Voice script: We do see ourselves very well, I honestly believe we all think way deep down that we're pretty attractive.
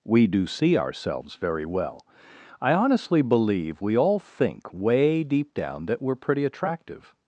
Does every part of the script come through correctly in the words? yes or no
yes